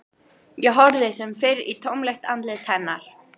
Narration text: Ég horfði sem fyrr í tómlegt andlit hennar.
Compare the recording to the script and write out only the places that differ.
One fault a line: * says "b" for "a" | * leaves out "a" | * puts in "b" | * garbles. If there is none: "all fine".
all fine